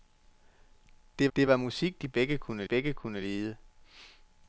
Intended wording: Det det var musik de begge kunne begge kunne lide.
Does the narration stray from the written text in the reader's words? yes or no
no